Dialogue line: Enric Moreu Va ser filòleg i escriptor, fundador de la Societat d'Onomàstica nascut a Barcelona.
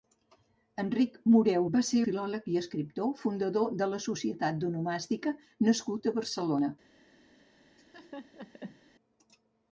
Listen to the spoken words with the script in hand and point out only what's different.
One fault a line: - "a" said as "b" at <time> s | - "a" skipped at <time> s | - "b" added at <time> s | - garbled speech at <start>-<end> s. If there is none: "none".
none